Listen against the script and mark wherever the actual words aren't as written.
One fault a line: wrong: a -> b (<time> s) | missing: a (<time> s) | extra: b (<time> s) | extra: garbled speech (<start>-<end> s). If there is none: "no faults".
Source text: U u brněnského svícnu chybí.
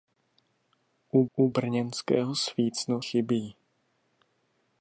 no faults